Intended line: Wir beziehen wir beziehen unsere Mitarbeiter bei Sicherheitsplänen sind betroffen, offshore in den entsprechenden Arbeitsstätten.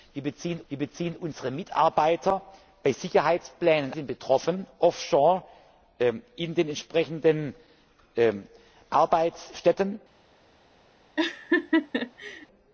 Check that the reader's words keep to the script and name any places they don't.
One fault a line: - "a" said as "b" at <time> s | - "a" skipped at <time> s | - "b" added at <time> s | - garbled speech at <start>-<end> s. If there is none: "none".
none